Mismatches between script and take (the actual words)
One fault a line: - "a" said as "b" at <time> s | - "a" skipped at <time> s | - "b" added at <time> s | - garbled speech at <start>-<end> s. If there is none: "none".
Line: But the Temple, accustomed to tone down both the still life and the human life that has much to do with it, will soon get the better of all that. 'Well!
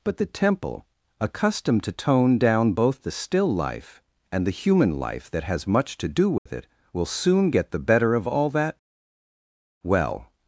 none